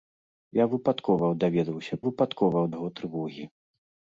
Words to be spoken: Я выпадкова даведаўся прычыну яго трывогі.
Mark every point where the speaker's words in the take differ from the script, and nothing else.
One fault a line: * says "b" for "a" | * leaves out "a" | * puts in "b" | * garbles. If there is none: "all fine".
* says "выпадкова" for "прычыну"